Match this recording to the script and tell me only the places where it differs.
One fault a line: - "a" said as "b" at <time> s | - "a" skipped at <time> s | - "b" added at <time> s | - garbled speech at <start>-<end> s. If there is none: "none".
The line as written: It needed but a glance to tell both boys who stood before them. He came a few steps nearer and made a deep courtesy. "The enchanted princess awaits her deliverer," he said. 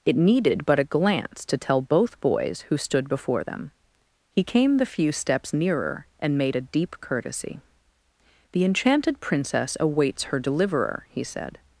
- "a" said as "the" at 4.8 s